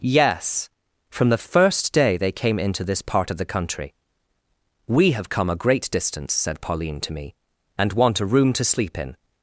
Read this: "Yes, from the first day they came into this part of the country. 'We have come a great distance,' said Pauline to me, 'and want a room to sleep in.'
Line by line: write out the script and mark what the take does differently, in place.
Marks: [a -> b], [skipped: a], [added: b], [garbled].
"Yes, from the first day they came into this part of the country. 'We have come a great distance,' said Pauline to me, 'and want a room to sleep in.'